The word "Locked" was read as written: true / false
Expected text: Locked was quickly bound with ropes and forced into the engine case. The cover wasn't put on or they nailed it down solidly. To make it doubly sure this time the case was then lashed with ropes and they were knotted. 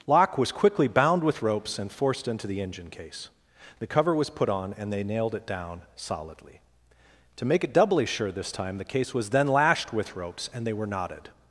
false